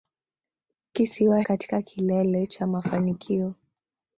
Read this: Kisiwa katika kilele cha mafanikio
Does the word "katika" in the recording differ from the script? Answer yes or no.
no